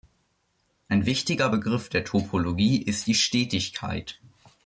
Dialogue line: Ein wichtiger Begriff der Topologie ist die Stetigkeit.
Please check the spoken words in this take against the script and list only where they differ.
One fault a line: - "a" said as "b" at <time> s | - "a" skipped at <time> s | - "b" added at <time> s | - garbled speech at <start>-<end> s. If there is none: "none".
none